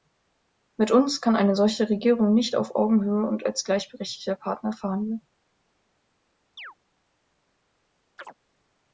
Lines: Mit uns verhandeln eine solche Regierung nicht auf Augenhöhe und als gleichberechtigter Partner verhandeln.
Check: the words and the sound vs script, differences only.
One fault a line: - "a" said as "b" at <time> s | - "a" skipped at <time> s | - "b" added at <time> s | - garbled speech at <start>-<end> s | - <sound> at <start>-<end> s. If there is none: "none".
- "verhandeln" said as "kann" at 1.2 s
- chirp at 6.6-6.7 s
- chirp at 8.2-8.3 s